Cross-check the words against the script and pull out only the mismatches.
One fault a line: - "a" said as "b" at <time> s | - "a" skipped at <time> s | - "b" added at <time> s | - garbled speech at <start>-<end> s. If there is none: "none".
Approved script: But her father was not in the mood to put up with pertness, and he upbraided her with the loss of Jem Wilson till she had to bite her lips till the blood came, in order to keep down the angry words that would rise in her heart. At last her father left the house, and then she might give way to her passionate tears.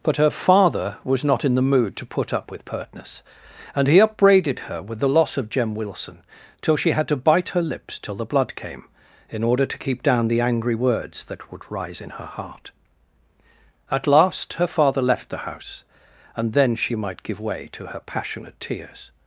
none